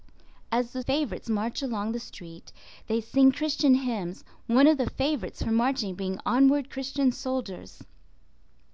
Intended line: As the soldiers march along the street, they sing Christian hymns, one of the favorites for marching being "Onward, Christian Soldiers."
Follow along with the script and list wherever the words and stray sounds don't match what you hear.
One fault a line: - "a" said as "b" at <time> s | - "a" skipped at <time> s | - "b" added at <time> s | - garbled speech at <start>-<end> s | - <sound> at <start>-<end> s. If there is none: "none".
- "soldiers" said as "favorites" at 0.8 s